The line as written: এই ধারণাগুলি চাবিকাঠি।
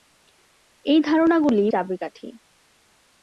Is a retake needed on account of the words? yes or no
no